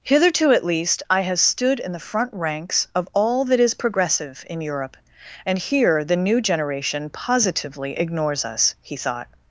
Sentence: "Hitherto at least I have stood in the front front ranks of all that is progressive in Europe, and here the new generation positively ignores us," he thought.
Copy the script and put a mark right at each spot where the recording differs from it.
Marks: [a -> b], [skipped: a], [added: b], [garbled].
"Hitherto at least I have stood in the front [skipped: front] ranks of all that is progressive in Europe, and here the new generation positively ignores us," he thought.